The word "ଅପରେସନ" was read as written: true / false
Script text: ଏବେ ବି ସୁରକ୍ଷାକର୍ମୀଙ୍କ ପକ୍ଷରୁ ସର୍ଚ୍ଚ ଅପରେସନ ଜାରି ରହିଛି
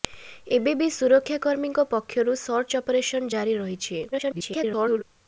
true